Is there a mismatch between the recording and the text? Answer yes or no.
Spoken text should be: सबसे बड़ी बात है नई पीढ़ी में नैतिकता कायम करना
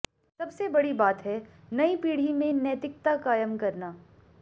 no